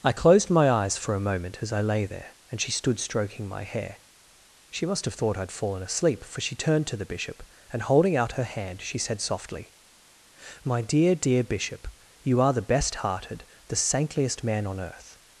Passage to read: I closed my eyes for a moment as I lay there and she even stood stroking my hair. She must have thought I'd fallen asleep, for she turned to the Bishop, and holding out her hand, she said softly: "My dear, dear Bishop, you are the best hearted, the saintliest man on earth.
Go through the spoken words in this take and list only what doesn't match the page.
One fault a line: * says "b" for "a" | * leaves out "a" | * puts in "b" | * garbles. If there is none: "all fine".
* leaves out "even"